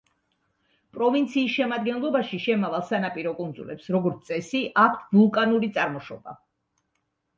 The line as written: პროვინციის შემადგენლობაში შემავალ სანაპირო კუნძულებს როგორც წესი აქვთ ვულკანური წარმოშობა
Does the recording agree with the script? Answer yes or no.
yes